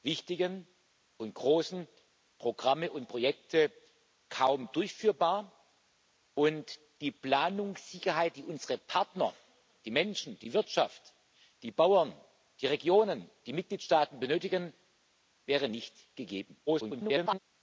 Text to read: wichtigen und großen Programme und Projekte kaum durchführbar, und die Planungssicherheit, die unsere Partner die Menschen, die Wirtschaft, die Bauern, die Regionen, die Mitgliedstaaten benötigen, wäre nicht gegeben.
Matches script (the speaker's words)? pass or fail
fail